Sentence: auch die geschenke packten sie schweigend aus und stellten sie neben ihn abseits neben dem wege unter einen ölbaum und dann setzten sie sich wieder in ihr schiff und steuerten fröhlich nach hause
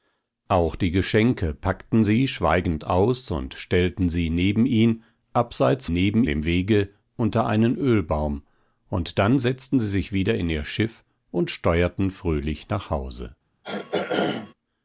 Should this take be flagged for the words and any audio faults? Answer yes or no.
yes